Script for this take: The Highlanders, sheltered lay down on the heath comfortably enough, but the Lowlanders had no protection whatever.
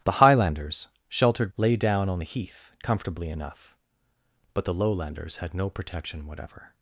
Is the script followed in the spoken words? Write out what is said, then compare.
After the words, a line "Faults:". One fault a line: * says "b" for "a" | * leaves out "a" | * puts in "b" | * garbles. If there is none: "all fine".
The Highlanders, sheltered lay down on the heath comfortably enough, but the Lowlanders had no protection whatever.
Faults:
all fine